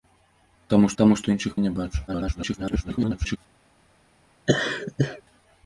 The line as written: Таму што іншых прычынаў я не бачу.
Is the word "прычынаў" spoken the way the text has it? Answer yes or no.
no